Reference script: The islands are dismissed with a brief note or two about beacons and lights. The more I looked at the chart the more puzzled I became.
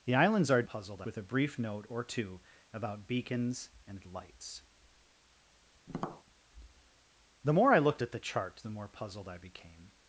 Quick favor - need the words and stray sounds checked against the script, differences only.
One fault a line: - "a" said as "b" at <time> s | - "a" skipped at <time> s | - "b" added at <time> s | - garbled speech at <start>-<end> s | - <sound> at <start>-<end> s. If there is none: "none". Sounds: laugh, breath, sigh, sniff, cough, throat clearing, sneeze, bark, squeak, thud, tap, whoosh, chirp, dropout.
- "dismissed" said as "puzzled" at 0.6 s
- tap at 5.9-6.2 s